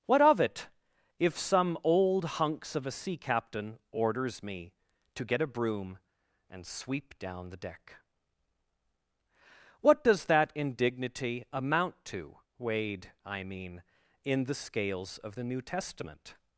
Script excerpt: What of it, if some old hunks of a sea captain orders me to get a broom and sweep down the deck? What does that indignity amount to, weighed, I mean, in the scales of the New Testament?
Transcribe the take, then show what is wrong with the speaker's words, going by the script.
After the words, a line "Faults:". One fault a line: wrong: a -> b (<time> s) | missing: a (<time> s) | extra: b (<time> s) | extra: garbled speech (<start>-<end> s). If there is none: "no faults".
What of it, if some old hunks of a sea captain orders me to get a broom and sweep down the deck? What does that indignity amount to, weighed, I mean, in the scales of the New Testament?
Faults:
no faults